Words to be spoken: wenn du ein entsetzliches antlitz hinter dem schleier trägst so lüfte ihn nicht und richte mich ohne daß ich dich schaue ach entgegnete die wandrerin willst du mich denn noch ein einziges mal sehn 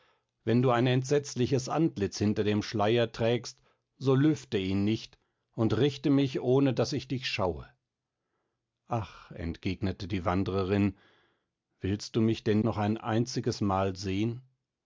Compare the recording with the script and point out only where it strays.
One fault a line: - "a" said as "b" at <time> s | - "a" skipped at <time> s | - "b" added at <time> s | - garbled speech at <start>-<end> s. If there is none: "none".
none